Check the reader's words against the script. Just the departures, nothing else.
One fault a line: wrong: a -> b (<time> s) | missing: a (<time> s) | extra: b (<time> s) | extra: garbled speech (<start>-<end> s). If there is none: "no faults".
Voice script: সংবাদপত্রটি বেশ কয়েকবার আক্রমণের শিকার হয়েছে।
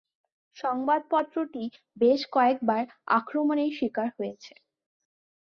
no faults